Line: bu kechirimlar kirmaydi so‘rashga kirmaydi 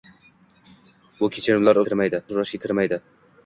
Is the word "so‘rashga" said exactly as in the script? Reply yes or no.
yes